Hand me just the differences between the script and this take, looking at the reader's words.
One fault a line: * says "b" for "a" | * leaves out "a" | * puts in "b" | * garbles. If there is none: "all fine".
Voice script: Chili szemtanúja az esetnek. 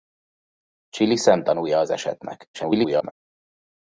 * garbles